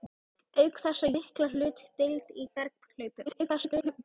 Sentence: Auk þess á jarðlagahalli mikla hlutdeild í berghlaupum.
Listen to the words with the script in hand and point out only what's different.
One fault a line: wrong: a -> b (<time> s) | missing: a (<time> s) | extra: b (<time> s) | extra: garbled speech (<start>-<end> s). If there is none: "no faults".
missing: jarðlagahalli (1.1 s)
extra: garbled speech (3.3-4.0 s)